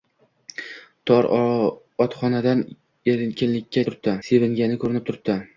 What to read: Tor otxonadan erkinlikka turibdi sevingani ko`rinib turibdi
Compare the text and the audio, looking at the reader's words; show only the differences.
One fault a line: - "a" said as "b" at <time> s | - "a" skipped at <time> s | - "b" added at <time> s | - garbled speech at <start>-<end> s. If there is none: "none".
none